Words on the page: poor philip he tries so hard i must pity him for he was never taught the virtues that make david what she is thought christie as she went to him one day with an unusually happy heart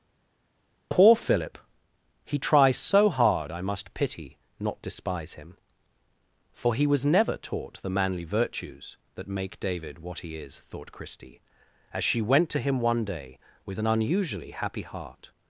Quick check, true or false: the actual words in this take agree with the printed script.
false